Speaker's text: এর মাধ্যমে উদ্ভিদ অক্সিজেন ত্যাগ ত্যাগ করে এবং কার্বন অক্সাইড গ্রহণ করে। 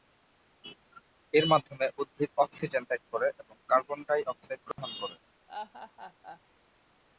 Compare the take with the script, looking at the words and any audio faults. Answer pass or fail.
fail